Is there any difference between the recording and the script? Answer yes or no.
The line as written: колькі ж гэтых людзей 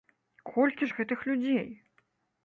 no